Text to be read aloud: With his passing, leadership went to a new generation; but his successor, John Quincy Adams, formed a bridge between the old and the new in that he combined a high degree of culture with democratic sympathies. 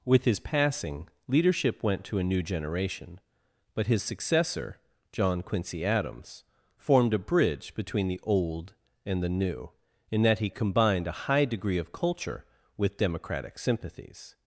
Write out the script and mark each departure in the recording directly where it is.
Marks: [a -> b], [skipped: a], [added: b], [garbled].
With his passing, leadership went to a new generation; but his successor, John Quincy Adams, formed a bridge between the old and the new in that he combined a high degree of culture with democratic sympathies.